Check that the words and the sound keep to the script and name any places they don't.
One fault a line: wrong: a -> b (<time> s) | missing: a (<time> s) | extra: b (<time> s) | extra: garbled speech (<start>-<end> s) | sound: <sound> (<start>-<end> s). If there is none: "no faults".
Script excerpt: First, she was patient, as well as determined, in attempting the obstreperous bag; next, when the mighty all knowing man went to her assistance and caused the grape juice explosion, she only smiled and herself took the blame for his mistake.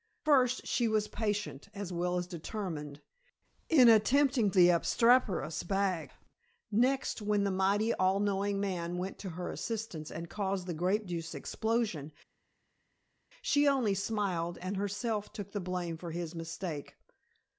no faults